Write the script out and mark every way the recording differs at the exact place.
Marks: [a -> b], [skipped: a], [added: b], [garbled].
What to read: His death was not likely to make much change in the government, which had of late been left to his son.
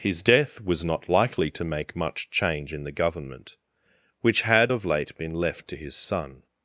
His death was not likely to make much change in the government, which had of late been left to his son.